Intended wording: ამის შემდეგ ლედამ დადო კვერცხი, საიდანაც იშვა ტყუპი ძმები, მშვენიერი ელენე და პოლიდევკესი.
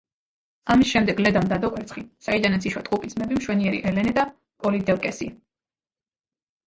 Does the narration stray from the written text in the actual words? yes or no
no